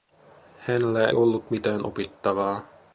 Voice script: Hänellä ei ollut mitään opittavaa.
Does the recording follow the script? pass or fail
fail